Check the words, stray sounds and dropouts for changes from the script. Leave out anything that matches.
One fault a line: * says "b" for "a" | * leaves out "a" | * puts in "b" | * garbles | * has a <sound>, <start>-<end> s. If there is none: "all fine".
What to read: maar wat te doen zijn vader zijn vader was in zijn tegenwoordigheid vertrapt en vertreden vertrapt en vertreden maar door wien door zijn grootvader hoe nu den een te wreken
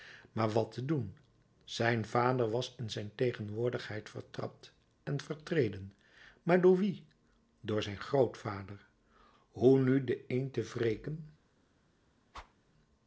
* leaves out "zijn vader"
* leaves out "vertrapt en vertreden"
* has a whoosh, 12.3-12.5 s